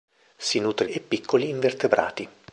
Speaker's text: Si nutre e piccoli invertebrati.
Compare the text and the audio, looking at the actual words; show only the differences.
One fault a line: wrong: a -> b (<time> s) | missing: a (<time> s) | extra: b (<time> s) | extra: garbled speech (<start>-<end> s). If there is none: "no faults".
no faults